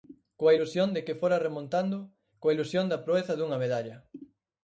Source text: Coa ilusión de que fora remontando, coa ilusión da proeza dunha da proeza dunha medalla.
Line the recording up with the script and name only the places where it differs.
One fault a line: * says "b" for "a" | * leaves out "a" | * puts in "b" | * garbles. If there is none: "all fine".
* leaves out "da proeza dunha"